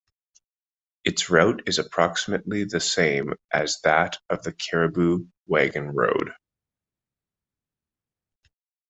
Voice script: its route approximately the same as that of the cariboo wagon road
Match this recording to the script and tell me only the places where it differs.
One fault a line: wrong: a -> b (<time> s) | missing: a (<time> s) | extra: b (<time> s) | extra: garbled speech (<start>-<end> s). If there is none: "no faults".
extra: is (1.7 s)